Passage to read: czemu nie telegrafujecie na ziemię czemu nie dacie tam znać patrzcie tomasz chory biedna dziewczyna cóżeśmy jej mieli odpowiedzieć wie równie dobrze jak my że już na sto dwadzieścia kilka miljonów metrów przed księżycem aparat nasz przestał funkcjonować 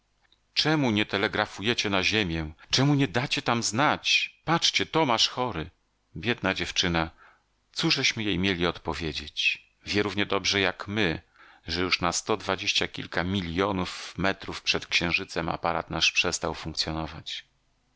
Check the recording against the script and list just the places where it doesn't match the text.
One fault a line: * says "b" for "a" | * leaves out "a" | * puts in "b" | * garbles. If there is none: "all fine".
all fine